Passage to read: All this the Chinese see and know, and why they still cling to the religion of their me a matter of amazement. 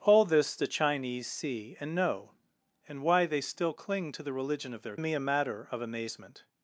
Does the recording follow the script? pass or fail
pass